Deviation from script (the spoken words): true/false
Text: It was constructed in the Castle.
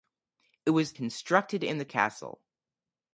false